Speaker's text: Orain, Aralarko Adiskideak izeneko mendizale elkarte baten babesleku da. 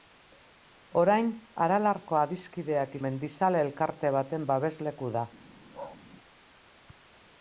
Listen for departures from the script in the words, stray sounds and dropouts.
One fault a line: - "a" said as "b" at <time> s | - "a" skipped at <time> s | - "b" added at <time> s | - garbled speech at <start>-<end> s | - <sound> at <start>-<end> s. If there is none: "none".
- "izeneko" skipped at 3.0 s
- bark at 5.7-6.0 s